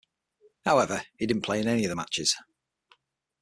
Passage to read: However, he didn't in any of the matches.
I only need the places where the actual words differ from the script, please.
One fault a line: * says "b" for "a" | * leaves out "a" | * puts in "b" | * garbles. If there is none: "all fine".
* puts in "play"